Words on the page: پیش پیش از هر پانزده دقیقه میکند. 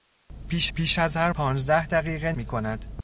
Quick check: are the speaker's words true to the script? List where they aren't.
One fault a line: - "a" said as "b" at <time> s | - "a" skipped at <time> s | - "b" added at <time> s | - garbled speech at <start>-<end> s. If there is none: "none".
none